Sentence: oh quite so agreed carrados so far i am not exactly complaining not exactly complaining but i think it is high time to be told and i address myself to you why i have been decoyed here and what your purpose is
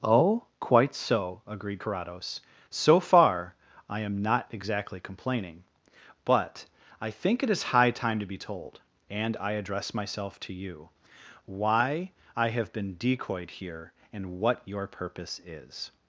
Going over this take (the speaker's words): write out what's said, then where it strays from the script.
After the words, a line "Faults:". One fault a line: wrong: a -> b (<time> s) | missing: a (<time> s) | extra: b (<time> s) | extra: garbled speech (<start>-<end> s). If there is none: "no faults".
oh quite so agreed carrados so far i am not exactly complaining but i think it is high time to be told and i address myself to you why i have been decoyed here and what your purpose is
Faults:
missing: not exactly complaining (5.6 s)